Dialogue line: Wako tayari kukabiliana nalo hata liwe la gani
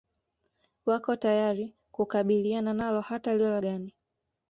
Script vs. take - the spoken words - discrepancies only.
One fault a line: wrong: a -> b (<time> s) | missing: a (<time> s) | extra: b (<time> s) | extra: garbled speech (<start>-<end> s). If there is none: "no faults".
no faults